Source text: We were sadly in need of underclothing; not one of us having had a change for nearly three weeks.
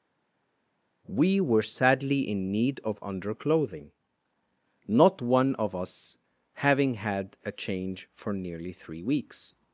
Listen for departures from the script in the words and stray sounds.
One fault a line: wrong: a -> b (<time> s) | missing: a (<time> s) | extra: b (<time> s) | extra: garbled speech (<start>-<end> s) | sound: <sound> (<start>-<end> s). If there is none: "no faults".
no faults